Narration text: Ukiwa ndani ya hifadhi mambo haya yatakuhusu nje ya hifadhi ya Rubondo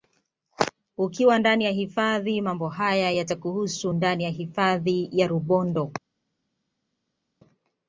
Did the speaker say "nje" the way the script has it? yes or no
no